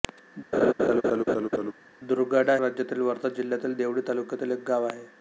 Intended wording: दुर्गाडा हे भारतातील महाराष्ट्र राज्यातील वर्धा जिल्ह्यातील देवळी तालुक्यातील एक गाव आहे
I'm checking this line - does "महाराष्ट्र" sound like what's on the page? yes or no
no